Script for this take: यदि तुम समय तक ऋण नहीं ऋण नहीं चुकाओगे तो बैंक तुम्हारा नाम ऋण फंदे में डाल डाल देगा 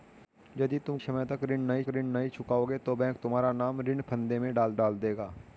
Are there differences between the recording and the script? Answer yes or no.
no